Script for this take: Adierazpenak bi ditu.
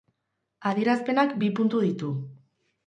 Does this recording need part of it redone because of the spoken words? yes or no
yes